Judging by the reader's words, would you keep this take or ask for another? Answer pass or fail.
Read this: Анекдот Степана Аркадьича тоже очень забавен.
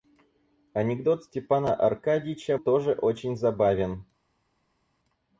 pass